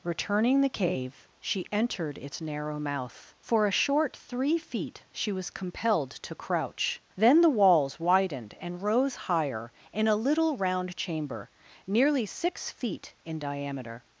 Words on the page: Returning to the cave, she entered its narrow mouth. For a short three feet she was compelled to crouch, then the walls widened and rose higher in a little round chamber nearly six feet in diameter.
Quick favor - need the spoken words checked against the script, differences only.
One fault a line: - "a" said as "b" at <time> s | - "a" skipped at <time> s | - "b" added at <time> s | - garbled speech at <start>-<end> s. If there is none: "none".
- "to" skipped at 0.6 s